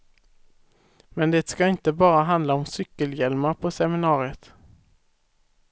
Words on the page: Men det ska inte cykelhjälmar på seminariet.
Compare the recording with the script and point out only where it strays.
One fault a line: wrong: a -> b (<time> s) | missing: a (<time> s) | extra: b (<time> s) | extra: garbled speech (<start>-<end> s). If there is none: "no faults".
extra: bara handla om (1.9 s)